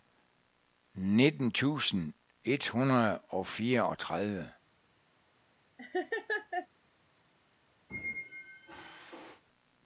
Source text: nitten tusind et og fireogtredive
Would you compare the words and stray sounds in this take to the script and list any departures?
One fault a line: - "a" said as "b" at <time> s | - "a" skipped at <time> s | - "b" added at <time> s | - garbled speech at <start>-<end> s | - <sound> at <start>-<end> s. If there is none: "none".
- "hundrede" added at 2.7 s
- laugh at 5.8-6.7 s
- squeak at 7.9-9.4 s